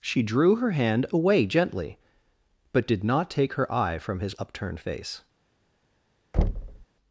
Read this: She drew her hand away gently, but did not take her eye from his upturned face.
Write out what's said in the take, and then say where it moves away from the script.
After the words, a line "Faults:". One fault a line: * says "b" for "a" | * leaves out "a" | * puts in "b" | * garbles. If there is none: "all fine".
She drew her hand away gently, but did not take her eye from his upturned face.
Faults:
all fine